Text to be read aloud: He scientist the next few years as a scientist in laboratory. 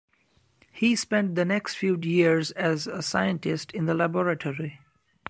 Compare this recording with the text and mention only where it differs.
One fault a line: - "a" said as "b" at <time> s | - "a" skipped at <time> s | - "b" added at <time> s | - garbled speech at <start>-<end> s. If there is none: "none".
- "scientist" said as "spent" at 0.9 s
- "the" added at 3.8 s